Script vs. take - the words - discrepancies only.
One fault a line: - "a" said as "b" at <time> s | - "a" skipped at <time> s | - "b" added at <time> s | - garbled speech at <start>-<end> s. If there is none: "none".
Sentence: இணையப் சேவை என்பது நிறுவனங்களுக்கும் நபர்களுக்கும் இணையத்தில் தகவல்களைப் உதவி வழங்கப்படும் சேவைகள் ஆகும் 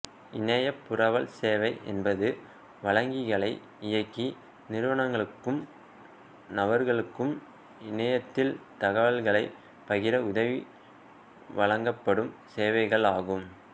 - "புரவல்" added at 0.8 s
- "வழங்கிகளை இயக்கி" added at 2.8 s
- "பகிர" added at 9.9 s